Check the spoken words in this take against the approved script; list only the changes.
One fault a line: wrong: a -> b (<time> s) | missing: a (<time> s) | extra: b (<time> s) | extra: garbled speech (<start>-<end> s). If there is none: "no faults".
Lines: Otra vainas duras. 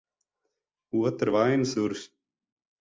no faults